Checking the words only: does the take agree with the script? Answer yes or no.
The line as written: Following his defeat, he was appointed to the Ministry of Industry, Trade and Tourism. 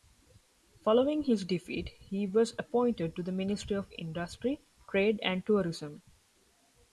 yes